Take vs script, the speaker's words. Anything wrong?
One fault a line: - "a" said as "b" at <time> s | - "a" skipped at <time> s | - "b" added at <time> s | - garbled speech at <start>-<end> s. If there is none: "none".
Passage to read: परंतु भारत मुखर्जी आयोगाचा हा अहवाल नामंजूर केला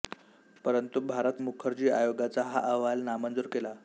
none